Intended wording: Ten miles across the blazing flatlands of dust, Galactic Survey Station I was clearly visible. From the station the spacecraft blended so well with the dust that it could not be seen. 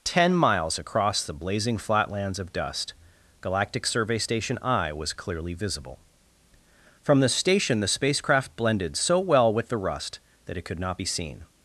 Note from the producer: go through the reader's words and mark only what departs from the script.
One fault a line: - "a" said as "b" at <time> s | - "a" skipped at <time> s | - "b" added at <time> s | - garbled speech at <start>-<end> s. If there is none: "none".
- "dust" said as "rust" at 9.8 s